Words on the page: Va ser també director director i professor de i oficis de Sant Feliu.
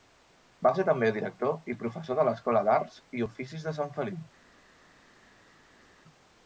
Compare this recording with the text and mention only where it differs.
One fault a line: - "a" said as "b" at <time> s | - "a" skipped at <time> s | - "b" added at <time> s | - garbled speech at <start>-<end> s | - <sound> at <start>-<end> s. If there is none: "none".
- "director" skipped at 1.7 s
- "l'escola d'arts" added at 2.3 s